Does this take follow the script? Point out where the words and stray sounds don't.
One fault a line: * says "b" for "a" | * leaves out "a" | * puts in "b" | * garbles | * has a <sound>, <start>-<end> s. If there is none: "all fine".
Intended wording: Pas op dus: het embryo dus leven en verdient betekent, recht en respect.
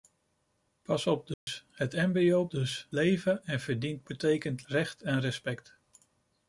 * has a dropout, 1.3-1.5 s